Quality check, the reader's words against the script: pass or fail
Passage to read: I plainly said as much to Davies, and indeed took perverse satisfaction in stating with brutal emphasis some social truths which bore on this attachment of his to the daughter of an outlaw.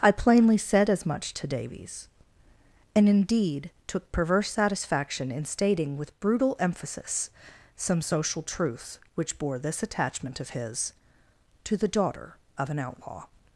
fail